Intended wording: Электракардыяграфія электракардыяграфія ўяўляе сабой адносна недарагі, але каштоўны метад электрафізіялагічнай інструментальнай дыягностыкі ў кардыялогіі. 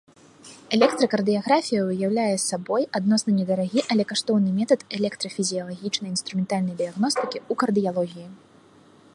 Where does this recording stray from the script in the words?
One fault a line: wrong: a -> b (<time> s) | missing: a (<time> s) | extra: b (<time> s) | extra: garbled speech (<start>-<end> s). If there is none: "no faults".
missing: электракардыяграфія (1.8 s)